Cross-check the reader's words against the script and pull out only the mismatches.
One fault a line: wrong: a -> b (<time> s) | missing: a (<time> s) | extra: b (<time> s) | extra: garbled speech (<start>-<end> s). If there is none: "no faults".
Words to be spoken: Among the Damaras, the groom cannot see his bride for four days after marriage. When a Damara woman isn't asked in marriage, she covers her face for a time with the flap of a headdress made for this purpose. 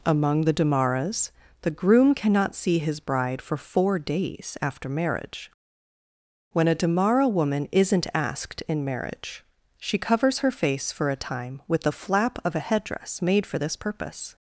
no faults